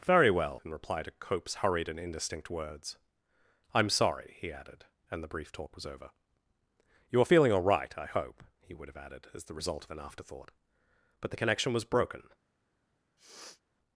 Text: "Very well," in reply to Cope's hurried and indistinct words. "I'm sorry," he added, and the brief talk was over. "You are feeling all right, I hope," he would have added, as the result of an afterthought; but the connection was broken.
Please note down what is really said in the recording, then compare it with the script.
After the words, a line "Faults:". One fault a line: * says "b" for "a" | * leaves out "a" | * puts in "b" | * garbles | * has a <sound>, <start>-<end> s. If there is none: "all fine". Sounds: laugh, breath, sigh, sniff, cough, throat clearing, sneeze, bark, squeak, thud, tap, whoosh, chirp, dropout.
"Very well," in reply to Cope's hurried and indistinct words. "I'm sorry," he added, and the brief talk was over. "You are feeling all right, I hope," he would have added, as the result of an afterthought; but the connection was broken.
Faults:
* has a sniff, 13.2-13.6 s